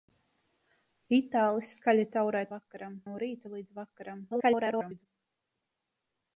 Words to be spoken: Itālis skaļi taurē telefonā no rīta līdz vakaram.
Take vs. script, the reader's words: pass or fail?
fail